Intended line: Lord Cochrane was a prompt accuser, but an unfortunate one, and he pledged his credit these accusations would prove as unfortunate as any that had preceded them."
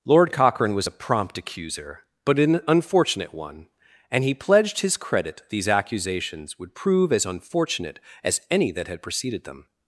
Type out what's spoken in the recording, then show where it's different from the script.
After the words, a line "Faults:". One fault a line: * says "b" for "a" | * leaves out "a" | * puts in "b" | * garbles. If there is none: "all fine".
Lord Cochrane was a prompt accuser, but an unfortunate one, and he pledged his credit these accusations would prove as unfortunate as any that had preceded them."
Faults:
all fine